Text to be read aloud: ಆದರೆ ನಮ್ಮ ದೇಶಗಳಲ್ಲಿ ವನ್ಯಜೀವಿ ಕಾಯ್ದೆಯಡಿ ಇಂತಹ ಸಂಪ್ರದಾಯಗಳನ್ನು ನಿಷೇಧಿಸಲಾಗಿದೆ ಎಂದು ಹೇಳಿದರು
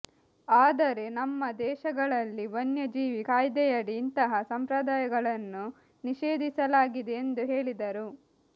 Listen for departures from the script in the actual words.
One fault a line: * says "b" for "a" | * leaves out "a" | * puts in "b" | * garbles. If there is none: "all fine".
all fine